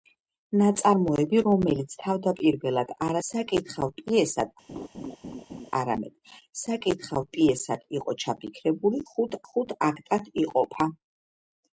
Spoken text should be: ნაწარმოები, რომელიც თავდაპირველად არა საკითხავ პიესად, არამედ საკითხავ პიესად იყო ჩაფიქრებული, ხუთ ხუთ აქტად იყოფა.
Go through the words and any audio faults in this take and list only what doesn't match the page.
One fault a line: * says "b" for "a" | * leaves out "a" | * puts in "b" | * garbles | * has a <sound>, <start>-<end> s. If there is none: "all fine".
* has a laugh, 4.7-5.7 s